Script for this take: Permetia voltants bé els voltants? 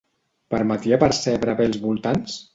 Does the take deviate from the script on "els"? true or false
false